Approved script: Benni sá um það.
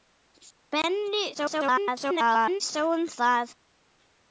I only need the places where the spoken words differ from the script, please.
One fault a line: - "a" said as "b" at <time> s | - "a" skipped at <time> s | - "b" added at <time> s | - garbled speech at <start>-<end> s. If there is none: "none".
- garbled speech at 1.3-2.6 s